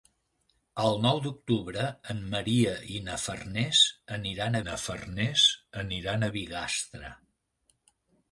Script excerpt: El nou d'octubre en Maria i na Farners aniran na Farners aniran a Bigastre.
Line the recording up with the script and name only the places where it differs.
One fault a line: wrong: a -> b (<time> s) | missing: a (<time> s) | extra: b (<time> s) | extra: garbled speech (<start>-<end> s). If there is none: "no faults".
no faults